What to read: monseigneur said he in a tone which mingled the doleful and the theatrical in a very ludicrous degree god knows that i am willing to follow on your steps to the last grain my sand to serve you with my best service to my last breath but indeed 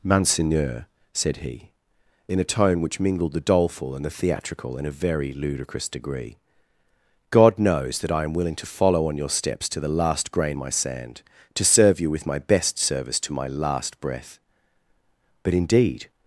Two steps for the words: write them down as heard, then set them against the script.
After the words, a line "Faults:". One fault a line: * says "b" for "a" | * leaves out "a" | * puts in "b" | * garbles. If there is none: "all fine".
monseigneur said he in a tone which mingled the doleful and the theatrical in a very ludicrous degree god knows that i am willing to follow on your steps to the last grain my sand to serve you with my best service to my last breath but indeed
Faults:
all fine